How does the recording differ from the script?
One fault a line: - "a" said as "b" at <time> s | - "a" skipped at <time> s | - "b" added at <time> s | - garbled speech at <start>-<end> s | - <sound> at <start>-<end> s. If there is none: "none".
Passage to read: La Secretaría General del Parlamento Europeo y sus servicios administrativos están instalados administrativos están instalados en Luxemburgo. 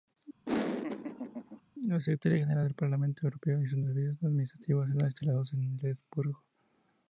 - laugh at 0.5-1.6 s
- "administrativos están instalados" skipped at 5.5 s